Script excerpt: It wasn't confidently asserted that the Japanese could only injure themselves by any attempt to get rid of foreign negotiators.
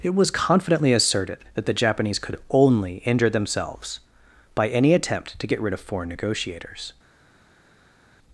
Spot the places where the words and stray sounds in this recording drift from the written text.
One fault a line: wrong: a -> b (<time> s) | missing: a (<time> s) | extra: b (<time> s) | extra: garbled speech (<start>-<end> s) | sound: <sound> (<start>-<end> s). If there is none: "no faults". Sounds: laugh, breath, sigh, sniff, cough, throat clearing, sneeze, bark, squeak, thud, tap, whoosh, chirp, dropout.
wrong: wasn't -> was (0.1 s)